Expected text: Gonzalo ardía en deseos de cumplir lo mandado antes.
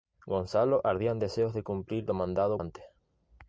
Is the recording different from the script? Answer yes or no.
no